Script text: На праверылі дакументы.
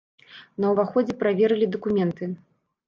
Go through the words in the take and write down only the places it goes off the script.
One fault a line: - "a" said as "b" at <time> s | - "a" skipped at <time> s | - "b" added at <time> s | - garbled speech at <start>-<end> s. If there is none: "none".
- "ўваходзе" added at 0.7 s